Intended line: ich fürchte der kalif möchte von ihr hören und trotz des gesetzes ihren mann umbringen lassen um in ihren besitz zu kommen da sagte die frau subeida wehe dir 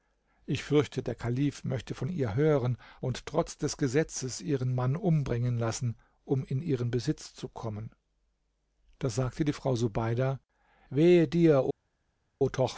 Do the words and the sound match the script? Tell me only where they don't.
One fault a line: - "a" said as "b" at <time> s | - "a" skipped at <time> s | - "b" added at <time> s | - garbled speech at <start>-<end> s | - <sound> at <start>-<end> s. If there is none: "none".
none